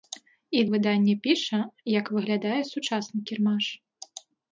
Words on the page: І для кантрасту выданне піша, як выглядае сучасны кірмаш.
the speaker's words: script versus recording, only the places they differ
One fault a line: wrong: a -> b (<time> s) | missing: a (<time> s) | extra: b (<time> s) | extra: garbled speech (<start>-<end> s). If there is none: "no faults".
missing: для кантрасту (0.6 s)